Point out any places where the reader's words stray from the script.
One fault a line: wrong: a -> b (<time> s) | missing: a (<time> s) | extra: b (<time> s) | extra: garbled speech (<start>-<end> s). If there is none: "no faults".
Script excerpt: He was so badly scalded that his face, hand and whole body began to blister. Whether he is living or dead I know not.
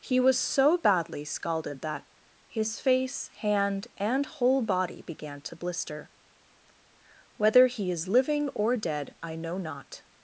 no faults